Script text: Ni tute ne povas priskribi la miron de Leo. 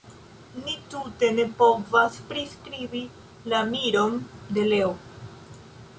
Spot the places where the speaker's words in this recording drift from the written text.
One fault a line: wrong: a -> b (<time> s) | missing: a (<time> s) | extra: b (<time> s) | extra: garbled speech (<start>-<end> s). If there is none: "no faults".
no faults